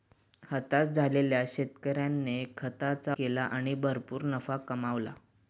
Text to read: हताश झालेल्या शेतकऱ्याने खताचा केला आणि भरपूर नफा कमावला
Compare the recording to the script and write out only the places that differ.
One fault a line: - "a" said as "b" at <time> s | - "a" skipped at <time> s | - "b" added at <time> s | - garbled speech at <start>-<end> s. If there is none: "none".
none